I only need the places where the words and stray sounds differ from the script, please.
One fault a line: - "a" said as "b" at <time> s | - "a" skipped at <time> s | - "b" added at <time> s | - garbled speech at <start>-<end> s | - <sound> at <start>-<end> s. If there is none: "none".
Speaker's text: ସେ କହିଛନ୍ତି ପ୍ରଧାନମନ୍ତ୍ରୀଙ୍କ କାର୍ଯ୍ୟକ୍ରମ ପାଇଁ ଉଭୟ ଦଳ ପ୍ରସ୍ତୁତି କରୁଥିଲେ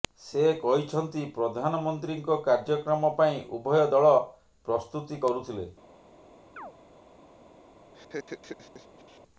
- chirp at 6.6-6.7 s
- laugh at 7.9-9.2 s